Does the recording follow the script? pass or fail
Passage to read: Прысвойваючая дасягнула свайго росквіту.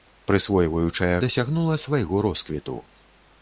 pass